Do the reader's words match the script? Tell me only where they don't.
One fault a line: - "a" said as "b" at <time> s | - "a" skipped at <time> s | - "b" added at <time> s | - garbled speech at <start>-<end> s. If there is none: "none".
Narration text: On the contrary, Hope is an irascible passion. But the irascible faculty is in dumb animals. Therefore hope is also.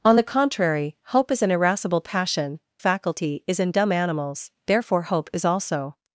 - "But the irascible" skipped at 2.6 s